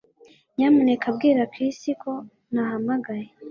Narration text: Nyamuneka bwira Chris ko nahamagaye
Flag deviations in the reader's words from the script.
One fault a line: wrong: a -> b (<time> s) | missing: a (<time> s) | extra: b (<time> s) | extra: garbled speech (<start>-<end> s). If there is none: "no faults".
no faults